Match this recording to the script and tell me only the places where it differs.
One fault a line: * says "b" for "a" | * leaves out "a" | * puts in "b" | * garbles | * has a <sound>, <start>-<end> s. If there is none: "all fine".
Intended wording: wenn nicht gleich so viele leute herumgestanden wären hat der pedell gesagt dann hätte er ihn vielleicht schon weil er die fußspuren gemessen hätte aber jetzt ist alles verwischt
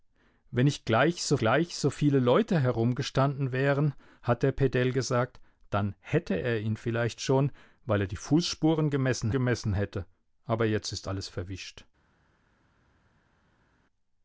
* puts in "gleich so"
* puts in "gemessen"